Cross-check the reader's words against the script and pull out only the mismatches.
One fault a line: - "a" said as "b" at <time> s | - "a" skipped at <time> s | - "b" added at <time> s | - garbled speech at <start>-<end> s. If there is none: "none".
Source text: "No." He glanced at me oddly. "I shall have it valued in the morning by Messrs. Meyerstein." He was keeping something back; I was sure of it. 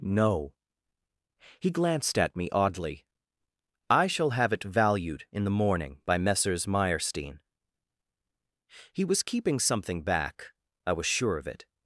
none